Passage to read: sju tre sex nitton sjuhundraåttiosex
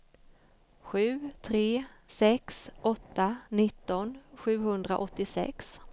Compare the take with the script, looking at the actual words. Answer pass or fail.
fail